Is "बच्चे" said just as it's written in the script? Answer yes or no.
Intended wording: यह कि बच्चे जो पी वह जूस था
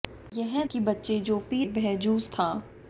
yes